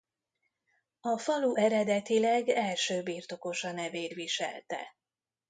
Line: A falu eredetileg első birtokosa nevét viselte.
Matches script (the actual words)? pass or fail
pass